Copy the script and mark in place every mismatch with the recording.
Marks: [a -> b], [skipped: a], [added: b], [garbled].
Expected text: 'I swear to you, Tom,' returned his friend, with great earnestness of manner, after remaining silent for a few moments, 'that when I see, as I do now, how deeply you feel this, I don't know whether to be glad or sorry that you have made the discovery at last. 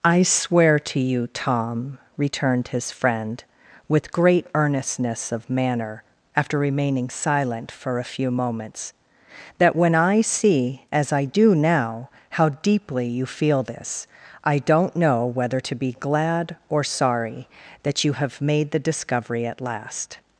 'I swear to you, Tom,' returned his friend, with great earnestness of manner, after remaining silent for a few moments, 'that when I see, as I do now, how deeply you feel this, I don't know whether to be glad or sorry that you have made the discovery at last.